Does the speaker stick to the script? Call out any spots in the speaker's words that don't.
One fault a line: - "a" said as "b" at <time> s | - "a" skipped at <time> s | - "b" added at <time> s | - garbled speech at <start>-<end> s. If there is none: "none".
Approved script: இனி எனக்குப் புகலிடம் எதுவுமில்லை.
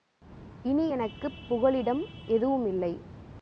none